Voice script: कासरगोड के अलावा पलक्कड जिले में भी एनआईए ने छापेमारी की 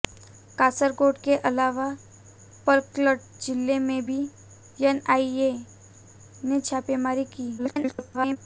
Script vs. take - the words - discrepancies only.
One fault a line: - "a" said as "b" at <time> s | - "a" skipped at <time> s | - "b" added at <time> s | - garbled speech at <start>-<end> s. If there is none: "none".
- garbled speech at 7.6-8.4 s